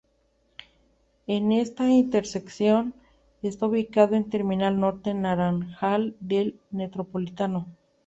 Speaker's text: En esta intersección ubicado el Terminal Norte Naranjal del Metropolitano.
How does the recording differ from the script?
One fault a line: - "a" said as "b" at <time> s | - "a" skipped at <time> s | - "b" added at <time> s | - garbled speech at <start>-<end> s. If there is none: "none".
- "está" added at 3.4 s